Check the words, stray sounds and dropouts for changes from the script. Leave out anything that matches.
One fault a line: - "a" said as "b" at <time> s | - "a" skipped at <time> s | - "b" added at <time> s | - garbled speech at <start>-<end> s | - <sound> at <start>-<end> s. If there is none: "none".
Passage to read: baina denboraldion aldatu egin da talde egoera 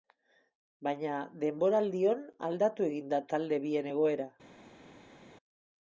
- "bien" added at 3.7 s